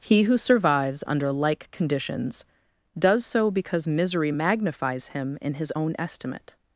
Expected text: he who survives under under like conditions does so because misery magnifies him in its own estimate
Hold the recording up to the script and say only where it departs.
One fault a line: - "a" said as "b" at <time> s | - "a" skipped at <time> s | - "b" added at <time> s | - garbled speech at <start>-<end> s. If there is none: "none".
- "under" skipped at 1.3 s
- "its" said as "his" at 5.6 s